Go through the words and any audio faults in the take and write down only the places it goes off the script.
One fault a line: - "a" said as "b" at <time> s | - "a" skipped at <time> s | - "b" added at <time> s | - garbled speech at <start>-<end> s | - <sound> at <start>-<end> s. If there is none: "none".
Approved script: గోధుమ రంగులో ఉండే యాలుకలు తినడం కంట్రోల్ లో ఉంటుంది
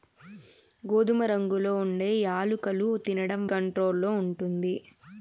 none